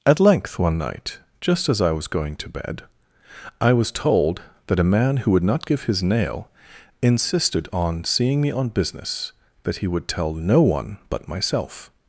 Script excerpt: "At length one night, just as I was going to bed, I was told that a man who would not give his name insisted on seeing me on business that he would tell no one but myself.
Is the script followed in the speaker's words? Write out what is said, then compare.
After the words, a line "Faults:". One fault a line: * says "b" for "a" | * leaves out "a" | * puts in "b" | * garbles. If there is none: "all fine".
"At length one night, just as I was going to bed, I was told that a man who would not give his nail insisted on seeing me on business that he would tell no one but myself.
Faults:
* says "nail" for "name"